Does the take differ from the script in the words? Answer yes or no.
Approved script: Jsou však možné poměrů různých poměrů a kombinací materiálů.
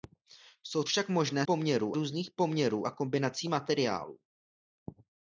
no